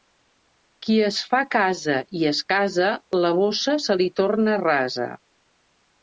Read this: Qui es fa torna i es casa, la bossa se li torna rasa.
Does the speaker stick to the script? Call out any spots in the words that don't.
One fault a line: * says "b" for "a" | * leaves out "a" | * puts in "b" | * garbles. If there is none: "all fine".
* says "casa" for "torna"